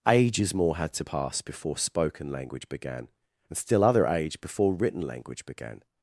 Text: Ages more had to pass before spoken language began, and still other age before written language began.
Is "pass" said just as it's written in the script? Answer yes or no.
yes